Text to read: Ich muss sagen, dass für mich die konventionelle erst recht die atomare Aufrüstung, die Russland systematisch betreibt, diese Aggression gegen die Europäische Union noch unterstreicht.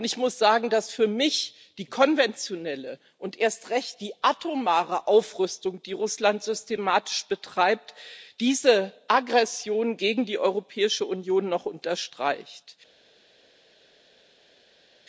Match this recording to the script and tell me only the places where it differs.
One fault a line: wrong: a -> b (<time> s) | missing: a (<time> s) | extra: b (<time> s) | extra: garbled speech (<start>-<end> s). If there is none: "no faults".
extra: und (3.2 s)